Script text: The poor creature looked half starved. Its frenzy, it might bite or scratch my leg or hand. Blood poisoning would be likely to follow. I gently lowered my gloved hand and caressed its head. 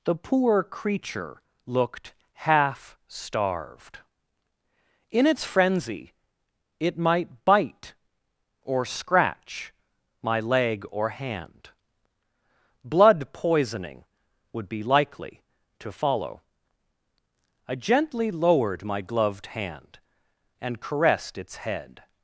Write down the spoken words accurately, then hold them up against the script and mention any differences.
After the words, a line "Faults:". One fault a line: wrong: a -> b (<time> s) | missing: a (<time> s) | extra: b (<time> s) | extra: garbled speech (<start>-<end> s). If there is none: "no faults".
The poor creature looked half starved. In its frenzy, it might bite or scratch my leg or hand. Blood poisoning would be likely to follow. I gently lowered my gloved hand and caressed its head.
Faults:
extra: In (5.1 s)